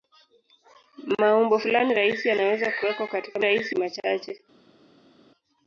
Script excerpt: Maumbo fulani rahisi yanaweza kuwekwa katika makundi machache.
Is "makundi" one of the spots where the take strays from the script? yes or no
yes